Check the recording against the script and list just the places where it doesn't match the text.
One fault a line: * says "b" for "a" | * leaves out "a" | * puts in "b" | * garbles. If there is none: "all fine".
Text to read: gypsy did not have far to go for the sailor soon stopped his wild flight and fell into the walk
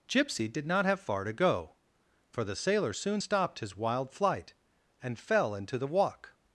all fine